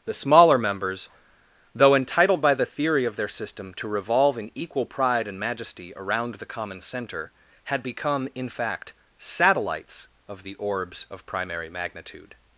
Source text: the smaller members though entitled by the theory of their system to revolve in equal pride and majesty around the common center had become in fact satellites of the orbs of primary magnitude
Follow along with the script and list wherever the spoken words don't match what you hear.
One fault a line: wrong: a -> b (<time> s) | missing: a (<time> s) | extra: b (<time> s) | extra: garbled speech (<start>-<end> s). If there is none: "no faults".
no faults